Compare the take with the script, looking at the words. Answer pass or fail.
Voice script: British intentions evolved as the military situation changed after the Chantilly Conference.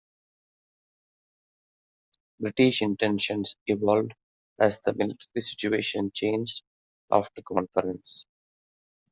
fail